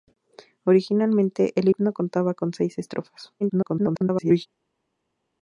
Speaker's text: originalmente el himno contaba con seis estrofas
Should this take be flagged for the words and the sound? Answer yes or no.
yes